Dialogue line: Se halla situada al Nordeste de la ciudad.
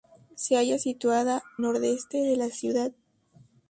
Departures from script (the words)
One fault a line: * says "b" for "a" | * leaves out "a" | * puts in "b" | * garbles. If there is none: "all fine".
* leaves out "al"